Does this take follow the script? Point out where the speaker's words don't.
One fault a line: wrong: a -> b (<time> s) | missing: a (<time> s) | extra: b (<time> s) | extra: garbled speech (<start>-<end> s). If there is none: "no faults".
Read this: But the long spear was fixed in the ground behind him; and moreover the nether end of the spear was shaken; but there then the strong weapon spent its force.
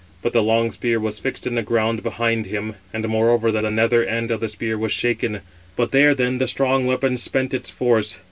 extra: the (3.6 s)